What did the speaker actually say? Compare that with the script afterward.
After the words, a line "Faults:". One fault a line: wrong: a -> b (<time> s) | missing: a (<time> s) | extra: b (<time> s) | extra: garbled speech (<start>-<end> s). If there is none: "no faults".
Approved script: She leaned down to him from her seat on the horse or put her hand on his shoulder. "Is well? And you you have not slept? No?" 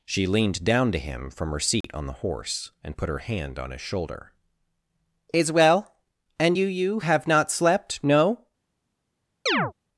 She leaned down to him from her seat on the horse and put her hand on his shoulder. "Is well? And you you have not slept? No?"
Faults:
wrong: or -> and (2.8 s)